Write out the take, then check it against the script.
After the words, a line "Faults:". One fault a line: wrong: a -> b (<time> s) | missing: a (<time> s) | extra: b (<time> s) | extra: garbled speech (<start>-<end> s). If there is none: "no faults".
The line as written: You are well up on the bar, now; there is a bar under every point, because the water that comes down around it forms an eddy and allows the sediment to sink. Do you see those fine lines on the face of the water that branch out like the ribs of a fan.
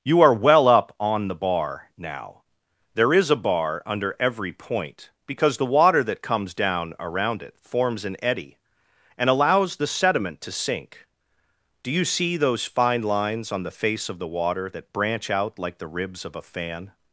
You are well up on the bar, now; there is a bar under every point, because the water that comes down around it forms an eddy and allows the sediment to sink. Do you see those fine lines on the face of the water that branch out like the ribs of a fan.
Faults:
no faults